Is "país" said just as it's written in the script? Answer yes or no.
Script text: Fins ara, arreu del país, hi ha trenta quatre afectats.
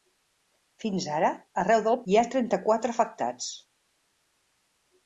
no